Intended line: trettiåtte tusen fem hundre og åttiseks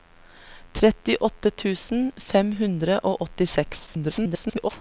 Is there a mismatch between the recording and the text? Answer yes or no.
yes